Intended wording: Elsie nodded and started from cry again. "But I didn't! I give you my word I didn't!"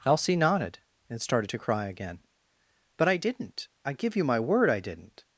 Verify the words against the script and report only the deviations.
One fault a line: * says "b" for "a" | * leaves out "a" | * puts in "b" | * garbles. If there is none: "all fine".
* says "to" for "from"